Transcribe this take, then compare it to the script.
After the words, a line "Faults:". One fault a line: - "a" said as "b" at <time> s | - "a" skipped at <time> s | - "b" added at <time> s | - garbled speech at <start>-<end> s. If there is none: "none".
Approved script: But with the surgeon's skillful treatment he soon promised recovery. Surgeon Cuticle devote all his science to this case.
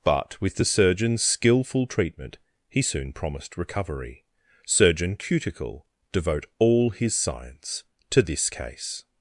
But with the surgeon's skillful treatment he soon promised recovery. Surgeon Cuticle devote all his science to this case.
Faults:
none